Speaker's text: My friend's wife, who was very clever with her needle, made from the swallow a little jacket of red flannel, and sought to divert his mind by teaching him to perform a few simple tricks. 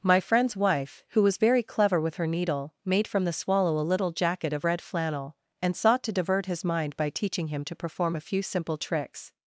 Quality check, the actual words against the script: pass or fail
pass